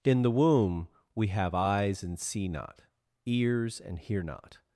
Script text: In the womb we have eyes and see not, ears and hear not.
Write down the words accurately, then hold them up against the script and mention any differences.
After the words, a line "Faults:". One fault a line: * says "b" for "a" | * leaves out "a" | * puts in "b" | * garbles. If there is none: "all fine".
In the womb we have eyes and see not, ears and hear not.
Faults:
all fine